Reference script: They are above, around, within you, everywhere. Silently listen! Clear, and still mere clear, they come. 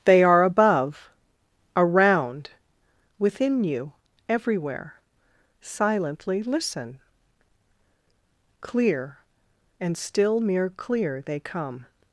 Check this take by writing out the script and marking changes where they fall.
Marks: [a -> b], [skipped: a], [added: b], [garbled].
They are above, around, within you, everywhere. Silently listen! Clear, and still mere clear, they come.